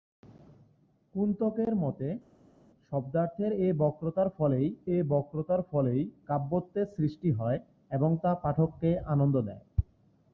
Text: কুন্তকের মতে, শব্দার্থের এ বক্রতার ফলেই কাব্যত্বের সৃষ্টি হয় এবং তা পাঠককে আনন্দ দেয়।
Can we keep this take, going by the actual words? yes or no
no